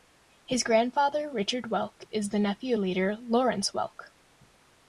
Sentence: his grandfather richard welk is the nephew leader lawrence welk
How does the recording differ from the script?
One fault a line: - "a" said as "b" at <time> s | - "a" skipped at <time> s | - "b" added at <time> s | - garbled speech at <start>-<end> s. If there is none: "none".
none